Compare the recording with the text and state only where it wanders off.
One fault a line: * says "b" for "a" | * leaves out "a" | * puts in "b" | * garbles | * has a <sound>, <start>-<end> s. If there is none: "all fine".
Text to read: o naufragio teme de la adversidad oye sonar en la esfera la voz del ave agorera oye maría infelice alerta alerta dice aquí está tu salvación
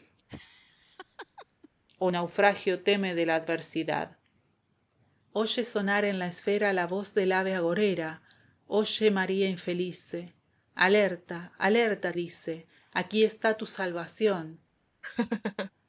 * has a laugh, 0.3-1.7 s
* has a laugh, 15.0-15.7 s